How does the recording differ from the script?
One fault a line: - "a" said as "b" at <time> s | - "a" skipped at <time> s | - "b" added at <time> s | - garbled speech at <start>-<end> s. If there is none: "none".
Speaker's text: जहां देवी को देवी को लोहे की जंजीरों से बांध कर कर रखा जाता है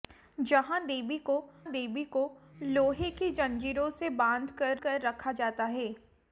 none